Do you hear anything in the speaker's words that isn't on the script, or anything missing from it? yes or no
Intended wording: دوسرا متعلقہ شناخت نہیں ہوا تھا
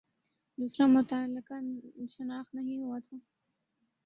no